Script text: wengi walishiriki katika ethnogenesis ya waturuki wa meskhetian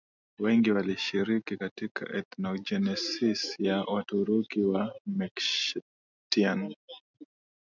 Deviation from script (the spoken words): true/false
false